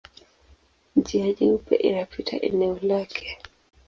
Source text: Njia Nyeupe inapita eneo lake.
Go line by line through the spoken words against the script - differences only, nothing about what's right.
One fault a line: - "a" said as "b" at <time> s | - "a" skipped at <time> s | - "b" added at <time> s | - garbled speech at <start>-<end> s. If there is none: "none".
none